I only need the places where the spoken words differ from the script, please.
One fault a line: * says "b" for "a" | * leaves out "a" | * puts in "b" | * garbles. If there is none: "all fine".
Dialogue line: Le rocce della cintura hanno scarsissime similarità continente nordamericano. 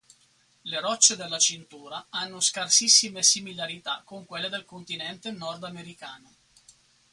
* puts in "con quelle del"